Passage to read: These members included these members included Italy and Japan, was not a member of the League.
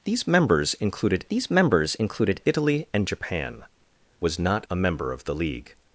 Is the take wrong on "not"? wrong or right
right